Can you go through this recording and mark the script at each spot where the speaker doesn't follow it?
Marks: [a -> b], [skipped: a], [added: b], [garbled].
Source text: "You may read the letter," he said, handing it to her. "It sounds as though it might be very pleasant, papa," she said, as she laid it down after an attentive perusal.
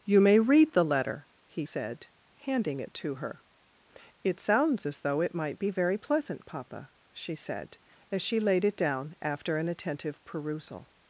"You may read the letter," he said, handing it to her. "It sounds as though it might be very pleasant, papa," she said, as she laid it down after an attentive perusal.